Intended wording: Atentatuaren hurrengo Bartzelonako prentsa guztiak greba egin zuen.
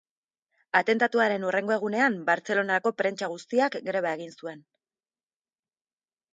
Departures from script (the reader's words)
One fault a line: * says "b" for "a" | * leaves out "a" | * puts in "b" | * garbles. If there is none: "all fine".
* puts in "egunean"